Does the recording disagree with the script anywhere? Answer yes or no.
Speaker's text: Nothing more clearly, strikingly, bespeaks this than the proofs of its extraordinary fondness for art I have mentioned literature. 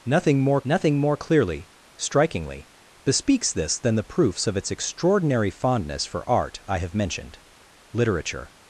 yes